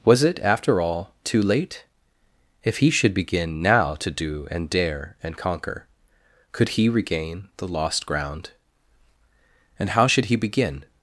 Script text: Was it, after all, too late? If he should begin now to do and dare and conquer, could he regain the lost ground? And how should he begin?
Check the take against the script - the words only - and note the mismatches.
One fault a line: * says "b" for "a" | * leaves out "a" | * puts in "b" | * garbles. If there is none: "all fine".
all fine